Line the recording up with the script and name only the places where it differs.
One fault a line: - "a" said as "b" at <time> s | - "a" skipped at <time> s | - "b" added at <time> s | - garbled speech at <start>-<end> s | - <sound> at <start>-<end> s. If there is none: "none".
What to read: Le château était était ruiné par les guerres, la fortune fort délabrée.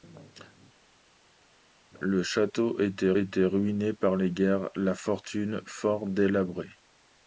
none